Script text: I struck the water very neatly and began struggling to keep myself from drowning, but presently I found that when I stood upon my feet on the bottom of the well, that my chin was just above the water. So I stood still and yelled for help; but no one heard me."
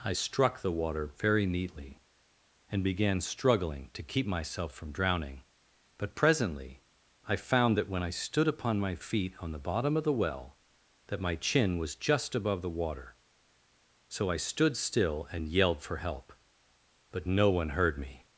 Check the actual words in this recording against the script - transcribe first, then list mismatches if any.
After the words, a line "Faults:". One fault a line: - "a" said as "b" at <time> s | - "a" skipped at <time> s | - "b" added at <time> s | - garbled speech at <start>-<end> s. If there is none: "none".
I struck the water very neatly and began struggling to keep myself from drowning, but presently I found that when I stood upon my feet on the bottom of the well, that my chin was just above the water. So I stood still and yelled for help; but no one heard me."
Faults:
none